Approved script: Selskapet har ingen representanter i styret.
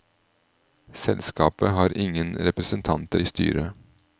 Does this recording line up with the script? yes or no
yes